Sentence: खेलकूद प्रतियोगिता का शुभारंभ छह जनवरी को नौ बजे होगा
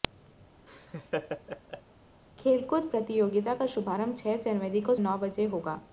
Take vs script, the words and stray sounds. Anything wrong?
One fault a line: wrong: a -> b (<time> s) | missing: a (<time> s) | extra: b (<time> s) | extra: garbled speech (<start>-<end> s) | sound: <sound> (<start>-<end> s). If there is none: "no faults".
sound: laugh (0.7-1.8 s)